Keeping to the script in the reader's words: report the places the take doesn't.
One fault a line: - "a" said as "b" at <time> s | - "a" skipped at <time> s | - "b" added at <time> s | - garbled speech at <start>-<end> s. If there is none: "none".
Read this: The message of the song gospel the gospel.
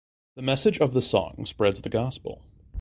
- "gospel" said as "spreads" at 1.4 s